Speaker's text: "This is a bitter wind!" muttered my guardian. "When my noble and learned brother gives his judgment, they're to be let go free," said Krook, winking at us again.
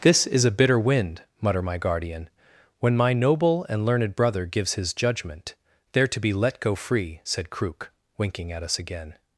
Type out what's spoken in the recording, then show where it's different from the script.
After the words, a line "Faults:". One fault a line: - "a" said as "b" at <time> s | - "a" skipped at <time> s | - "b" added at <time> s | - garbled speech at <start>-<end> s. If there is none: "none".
"This is a bitter wind!" mutter my guardian. "When my noble and learned brother gives his judgment, they're to be let go free," said Krook, winking at us again.
Faults:
- "muttered" said as "mutter" at 1.4 s